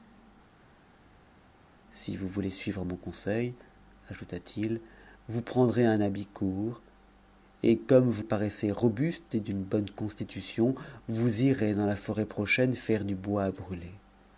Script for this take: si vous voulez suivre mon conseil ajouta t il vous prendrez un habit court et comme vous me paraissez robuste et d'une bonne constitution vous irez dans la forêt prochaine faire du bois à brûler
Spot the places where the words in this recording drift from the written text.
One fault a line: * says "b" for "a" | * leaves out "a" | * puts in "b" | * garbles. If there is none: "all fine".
* leaves out "me"